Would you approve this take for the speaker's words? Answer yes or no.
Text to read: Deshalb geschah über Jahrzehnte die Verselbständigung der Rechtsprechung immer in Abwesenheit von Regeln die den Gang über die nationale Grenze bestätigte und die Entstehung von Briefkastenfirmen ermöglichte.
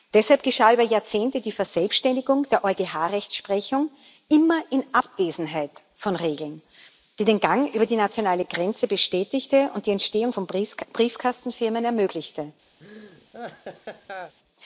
no